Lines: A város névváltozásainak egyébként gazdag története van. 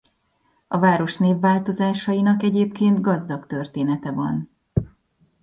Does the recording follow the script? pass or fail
pass